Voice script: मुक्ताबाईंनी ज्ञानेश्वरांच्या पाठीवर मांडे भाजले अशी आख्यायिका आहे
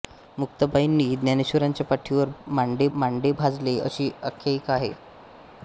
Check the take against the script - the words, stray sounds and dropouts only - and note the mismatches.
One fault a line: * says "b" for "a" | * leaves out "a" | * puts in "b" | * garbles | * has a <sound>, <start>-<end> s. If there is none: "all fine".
* puts in "मांडे"